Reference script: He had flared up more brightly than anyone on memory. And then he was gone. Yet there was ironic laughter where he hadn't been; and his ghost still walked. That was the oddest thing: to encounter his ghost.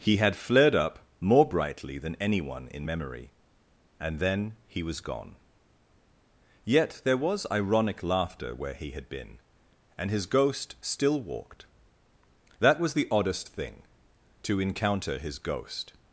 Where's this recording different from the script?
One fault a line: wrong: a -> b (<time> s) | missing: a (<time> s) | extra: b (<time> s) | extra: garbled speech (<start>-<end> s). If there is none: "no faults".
wrong: on -> in (2.7 s)
wrong: hadn't -> had (8.9 s)